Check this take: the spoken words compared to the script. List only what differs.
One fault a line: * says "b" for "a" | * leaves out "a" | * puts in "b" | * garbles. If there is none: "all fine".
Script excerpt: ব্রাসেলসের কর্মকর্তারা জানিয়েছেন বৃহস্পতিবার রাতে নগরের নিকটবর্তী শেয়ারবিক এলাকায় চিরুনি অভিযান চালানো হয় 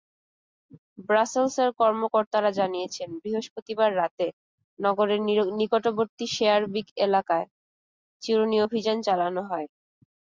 all fine